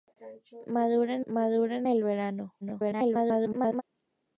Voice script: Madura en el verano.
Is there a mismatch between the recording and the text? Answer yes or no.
yes